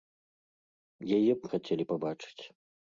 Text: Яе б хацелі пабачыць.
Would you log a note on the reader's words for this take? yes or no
no